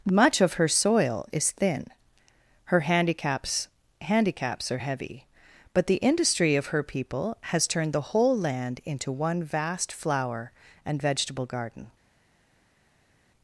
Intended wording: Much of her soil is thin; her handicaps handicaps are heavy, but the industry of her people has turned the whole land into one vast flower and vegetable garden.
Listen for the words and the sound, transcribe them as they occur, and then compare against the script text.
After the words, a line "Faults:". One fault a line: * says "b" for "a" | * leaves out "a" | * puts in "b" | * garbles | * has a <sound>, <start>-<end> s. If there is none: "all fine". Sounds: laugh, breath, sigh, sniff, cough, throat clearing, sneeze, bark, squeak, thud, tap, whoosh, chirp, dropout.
Much of her soil is thin; her handicaps handicaps are heavy, but the industry of her people has turned the whole land into one vast flower and vegetable garden.
Faults:
all fine